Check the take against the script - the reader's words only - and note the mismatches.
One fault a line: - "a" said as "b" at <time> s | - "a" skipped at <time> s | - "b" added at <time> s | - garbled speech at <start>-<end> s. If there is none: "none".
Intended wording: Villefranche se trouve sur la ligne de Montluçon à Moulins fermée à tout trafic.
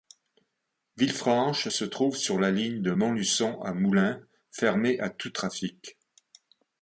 none